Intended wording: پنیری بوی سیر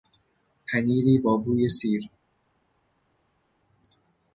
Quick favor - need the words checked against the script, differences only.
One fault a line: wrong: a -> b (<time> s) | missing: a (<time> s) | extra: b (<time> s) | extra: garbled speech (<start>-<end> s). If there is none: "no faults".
extra: با (1.2 s)